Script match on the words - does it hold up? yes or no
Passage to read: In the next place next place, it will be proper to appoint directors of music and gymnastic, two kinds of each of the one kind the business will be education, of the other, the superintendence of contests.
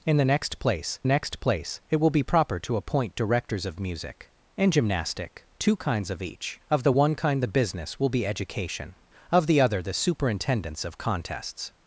yes